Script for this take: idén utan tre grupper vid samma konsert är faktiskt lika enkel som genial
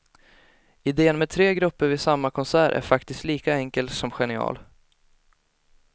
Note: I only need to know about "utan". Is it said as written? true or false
false